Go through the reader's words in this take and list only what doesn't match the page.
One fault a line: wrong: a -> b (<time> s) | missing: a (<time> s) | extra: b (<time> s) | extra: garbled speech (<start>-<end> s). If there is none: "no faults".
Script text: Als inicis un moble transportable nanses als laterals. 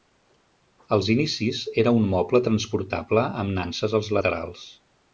extra: era (1.8 s)
extra: amb (3.5 s)